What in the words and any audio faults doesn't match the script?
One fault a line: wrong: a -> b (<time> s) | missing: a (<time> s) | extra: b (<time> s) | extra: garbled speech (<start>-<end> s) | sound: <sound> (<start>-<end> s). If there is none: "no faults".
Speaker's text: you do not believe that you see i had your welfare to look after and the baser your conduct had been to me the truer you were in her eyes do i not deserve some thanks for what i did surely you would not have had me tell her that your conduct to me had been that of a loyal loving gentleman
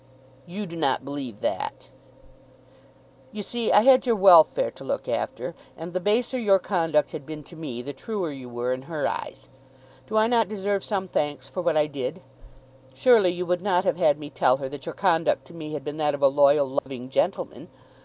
sound: dropout (16.8-16.9 s)